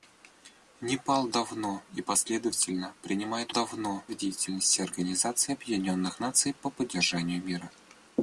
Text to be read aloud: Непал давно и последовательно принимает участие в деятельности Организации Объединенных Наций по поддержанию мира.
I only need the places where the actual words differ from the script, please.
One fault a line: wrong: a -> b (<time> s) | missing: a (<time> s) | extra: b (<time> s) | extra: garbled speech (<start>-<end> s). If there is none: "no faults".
wrong: участие -> давно (3.5 s)